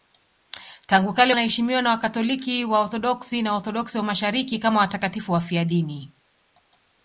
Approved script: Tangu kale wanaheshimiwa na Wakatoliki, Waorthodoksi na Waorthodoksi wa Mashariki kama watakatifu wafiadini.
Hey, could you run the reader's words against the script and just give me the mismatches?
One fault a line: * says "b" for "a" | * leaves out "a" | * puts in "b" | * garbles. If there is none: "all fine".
all fine